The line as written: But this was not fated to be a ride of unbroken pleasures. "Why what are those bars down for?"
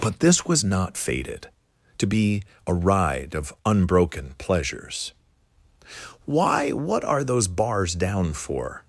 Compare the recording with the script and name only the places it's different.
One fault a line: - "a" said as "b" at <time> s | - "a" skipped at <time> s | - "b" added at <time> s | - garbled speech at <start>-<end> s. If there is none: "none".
none